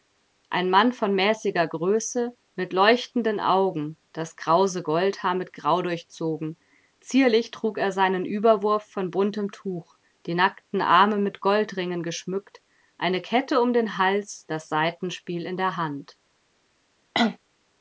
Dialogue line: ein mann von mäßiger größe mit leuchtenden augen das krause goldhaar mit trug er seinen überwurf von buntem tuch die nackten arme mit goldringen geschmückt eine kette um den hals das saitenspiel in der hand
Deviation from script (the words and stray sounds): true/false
true